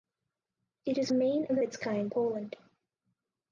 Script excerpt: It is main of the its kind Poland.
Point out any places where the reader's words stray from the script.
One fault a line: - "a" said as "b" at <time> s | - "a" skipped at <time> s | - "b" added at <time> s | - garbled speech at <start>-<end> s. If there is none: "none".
none